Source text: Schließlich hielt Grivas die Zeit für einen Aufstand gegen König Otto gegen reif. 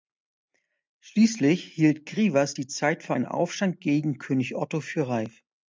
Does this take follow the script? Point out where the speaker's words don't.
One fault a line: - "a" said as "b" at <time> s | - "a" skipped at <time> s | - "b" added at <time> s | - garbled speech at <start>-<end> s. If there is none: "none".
- "gegen" said as "für" at 4.8 s